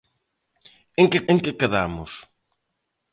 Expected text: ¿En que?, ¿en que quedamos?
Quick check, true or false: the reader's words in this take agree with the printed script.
true